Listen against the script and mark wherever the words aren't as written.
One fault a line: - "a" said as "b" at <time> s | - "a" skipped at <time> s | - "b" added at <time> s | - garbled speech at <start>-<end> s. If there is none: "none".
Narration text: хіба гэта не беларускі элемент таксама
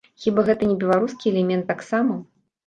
none